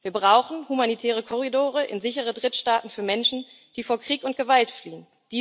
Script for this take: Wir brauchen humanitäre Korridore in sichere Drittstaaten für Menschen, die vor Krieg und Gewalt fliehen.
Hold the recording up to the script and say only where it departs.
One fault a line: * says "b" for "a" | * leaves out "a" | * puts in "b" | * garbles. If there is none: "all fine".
all fine